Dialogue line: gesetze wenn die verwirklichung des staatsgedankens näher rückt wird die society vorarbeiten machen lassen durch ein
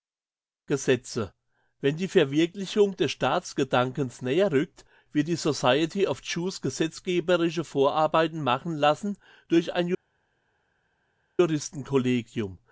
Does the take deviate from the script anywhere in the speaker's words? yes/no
yes